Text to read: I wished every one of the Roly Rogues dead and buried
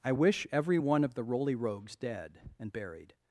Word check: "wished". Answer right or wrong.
wrong